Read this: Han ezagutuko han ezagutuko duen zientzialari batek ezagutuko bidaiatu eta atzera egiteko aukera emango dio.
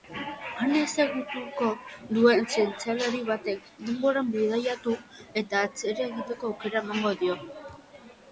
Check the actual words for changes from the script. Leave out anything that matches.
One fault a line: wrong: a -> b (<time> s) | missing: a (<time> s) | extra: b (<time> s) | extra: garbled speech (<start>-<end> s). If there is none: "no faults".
missing: han ezagutuko (1.7 s)
wrong: ezagutuko -> denboran (3.9 s)